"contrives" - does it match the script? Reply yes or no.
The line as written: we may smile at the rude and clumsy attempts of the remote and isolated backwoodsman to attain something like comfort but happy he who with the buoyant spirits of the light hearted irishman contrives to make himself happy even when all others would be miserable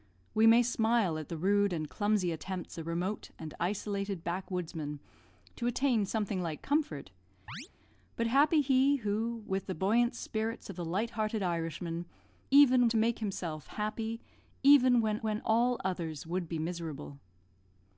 no